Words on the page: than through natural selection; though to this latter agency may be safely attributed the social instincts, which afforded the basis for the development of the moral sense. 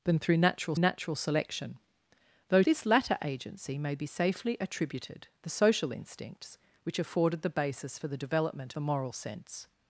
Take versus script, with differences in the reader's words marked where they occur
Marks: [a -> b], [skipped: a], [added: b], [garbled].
than through natural [added: natural] selection; though [skipped: to] this latter agency may be safely attributed the social instincts, which afforded the basis for the development [skipped: of] the moral sense.